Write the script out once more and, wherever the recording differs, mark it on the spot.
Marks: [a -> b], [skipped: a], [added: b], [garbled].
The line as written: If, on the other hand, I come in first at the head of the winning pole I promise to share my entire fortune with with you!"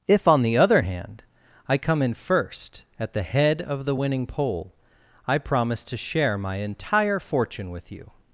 If, on the other hand, I come in first at the head of the winning pole I promise to share my entire fortune with [skipped: with] you!"